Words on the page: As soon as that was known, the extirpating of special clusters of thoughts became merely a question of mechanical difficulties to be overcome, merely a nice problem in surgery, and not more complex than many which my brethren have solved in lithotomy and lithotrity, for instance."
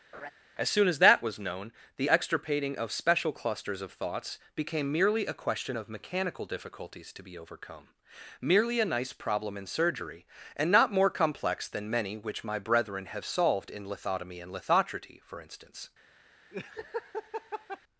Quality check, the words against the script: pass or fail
pass